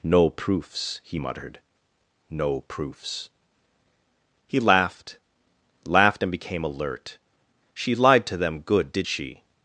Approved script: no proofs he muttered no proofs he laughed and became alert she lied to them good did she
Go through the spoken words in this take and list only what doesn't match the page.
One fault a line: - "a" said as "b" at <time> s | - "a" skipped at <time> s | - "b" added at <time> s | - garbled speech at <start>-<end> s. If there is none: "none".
- "laughed" added at 5.8 s